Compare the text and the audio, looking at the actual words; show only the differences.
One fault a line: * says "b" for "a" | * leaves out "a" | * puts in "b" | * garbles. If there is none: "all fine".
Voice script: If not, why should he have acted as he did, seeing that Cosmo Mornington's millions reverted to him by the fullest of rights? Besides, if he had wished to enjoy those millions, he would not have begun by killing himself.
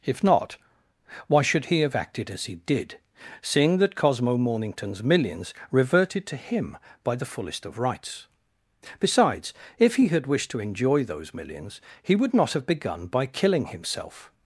all fine